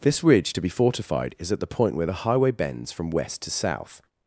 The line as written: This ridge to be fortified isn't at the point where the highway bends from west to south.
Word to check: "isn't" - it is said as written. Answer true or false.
false